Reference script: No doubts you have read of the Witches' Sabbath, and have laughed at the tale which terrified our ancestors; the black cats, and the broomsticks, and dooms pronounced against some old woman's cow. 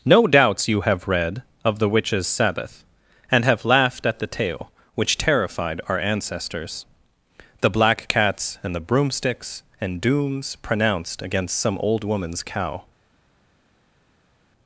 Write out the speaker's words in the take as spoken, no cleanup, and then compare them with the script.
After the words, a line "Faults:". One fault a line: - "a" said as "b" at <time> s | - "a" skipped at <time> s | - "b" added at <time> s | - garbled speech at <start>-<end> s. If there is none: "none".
No doubts you have read of the Witches' Sabbath, and have laughed at the tale which terrified our ancestors; the black cats, and the broomsticks, and dooms pronounced against some old woman's cow.
Faults:
none